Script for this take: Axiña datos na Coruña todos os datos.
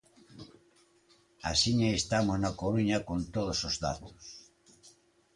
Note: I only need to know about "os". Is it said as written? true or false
true